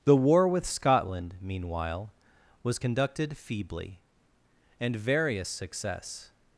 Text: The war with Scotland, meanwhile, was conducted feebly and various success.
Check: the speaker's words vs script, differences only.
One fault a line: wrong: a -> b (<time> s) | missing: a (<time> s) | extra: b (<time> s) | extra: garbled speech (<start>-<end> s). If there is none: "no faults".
no faults